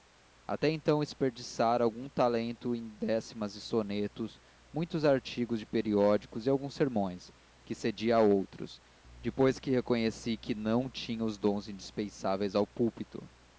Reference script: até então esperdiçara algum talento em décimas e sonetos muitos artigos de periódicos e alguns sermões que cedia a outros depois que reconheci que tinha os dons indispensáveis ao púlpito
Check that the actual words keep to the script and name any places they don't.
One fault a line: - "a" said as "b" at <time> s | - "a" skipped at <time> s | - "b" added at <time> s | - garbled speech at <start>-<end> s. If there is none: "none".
- "não" added at 10.6 s